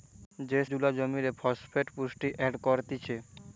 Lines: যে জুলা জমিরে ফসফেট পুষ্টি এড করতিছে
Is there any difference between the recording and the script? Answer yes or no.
no